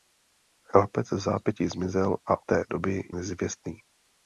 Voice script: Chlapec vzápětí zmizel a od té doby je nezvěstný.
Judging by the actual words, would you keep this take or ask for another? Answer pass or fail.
fail